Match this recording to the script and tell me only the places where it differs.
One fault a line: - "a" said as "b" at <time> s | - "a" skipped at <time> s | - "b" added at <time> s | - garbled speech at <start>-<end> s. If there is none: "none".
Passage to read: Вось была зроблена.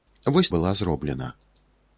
none